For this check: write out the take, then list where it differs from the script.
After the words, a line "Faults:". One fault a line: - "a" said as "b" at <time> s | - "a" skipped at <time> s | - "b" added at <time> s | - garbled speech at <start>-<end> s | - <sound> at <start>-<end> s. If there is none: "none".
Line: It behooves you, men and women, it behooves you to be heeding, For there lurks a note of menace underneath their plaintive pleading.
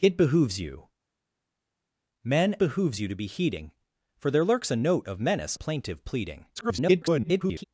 It behooves you, men behooves you to be heeding, For there lurks a note of menace plaintive pleading. [garbled]
Faults:
- "and women it" skipped at 2.5 s
- "underneath their" skipped at 5.6 s
- garbled speech at 6.6-7.6 s